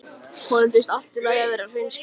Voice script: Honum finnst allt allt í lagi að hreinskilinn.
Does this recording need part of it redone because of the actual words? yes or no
yes